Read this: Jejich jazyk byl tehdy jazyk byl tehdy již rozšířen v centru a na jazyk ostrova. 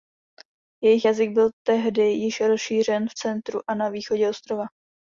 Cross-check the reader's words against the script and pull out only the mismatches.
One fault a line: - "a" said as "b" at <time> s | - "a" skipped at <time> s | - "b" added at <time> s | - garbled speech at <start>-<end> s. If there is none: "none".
- "jazyk byl tehdy" skipped at 2.0 s
- "jazyk" said as "východě" at 3.9 s